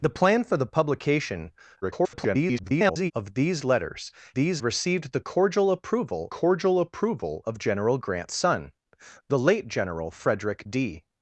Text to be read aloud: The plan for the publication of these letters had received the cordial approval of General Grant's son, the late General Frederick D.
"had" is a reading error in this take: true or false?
true